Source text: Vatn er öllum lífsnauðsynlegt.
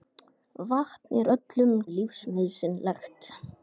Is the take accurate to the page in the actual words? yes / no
yes